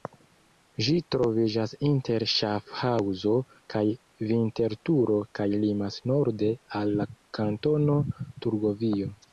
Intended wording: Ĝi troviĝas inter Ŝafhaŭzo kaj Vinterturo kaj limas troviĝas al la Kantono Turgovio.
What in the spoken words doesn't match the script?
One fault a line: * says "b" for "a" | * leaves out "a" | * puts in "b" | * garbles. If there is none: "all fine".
* says "norde" for "troviĝas"